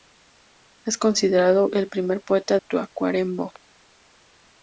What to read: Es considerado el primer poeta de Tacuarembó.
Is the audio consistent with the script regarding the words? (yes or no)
no